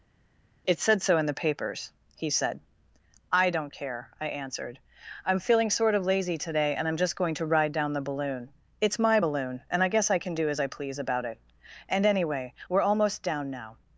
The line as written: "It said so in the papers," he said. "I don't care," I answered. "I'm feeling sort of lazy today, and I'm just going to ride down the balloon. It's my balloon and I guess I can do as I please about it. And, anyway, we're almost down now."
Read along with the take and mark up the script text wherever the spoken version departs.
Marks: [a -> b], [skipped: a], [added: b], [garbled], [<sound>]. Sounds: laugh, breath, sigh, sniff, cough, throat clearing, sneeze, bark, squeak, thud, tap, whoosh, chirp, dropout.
"It said so in the papers," he said. "I don't care," I answered. "I'm feeling sort of lazy today, and I'm just going to ride down the balloon. It's my balloon and I guess I can do as I please about it. And, anyway, we're almost down now."